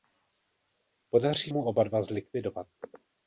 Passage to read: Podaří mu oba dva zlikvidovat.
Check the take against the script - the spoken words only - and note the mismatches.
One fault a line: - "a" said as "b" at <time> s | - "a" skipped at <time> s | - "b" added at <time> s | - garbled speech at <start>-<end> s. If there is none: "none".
none